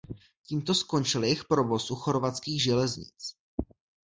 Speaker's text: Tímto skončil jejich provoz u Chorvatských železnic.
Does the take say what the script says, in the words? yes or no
yes